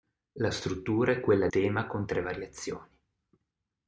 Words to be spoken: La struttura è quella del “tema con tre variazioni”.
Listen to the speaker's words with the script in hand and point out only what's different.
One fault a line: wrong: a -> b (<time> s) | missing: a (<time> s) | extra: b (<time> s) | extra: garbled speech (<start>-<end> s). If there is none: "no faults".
missing: del (1.5 s)